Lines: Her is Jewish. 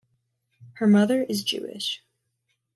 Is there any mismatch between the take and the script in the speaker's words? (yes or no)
yes